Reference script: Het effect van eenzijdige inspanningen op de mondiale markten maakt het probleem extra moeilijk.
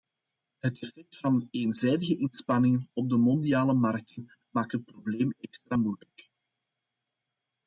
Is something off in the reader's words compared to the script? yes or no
no